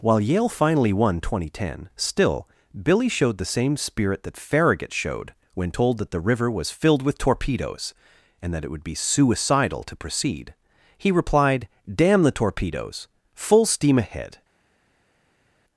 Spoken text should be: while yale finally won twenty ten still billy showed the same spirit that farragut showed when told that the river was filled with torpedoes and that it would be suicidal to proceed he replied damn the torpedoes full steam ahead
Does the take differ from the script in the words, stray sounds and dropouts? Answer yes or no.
no